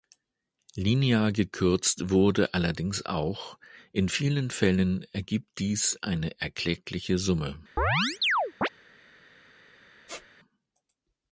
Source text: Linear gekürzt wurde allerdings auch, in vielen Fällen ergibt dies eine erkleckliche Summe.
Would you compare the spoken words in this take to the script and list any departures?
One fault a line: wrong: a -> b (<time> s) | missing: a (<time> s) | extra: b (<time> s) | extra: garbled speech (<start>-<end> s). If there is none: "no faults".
no faults